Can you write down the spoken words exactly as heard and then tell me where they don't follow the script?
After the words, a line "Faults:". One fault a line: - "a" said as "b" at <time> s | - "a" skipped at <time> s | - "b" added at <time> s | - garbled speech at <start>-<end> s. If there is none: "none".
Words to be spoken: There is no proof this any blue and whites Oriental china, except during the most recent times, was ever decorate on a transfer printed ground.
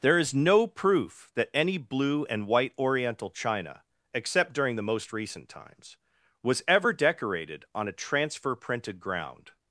There is no proof that any blue and white Oriental china, except during the most recent times, was ever decorated on a transfer printed ground.
Faults:
- "this" said as "that" at 1.4 s
- "whites" said as "white" at 2.5 s
- "decorate" said as "decorated" at 6.9 s